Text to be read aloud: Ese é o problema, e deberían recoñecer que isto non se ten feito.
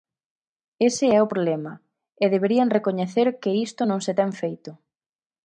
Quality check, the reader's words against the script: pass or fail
pass